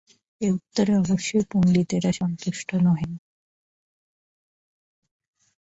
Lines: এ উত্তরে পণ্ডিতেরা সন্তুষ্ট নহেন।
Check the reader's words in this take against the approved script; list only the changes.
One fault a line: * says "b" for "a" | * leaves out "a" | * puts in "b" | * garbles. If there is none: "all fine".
* puts in "অবশ্যই"